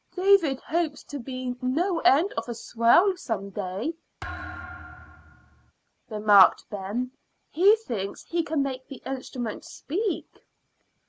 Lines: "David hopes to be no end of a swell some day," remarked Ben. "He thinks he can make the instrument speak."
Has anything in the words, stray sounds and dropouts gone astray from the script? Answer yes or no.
yes